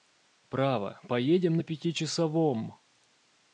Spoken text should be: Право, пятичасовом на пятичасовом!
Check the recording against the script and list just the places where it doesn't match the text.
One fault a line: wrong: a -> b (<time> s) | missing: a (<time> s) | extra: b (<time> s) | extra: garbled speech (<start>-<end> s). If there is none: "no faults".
wrong: пятичасовом -> поедем (1.1 s)